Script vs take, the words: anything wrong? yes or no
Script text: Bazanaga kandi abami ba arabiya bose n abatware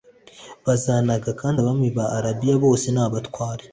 no